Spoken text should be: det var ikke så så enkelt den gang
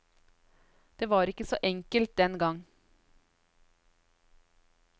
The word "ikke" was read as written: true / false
true